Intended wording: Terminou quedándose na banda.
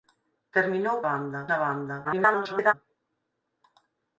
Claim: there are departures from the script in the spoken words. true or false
true